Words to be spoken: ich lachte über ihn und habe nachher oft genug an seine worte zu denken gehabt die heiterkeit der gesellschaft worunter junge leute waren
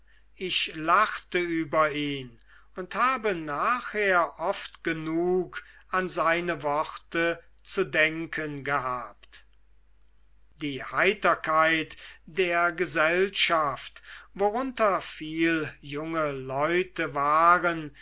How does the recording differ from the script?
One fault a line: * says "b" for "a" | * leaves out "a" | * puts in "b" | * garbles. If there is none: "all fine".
* puts in "viel"